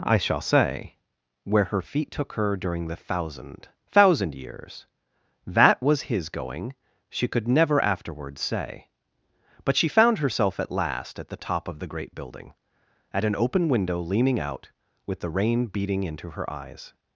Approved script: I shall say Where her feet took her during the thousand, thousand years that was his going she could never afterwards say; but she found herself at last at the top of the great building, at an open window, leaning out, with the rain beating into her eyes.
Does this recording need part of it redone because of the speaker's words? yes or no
no